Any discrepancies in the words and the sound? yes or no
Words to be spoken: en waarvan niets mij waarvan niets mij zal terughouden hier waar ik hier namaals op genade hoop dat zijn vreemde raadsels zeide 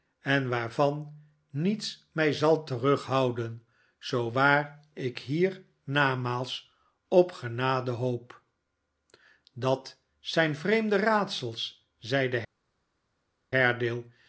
yes